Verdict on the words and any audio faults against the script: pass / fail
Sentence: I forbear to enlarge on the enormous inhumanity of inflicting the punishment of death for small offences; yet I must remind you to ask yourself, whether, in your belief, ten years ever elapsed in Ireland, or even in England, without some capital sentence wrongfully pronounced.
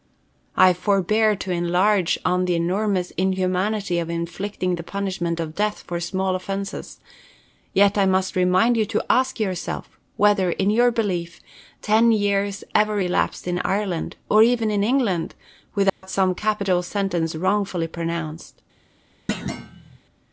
fail